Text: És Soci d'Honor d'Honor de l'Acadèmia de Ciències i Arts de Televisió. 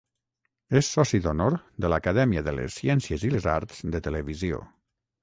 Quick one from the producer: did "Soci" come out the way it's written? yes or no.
yes